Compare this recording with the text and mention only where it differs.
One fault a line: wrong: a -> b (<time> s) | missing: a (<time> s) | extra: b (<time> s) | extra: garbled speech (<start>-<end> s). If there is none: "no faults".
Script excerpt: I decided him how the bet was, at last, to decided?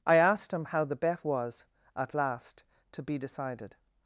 wrong: decided -> asked (0.1 s)
extra: be (3.0 s)